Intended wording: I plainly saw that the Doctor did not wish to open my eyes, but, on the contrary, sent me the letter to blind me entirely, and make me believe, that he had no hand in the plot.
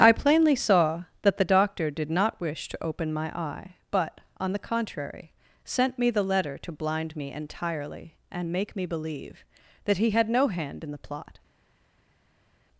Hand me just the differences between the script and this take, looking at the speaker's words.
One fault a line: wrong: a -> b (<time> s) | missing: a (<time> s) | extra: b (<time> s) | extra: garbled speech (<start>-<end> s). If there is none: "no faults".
wrong: eyes -> eye (3.4 s)